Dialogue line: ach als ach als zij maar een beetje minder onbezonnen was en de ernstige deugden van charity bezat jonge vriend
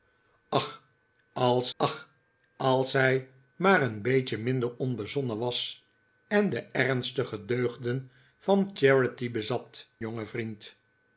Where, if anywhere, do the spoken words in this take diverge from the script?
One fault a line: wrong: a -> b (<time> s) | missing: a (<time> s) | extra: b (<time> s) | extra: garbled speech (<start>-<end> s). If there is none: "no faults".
no faults